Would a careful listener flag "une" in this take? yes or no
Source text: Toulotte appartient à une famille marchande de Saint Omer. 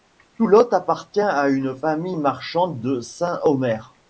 no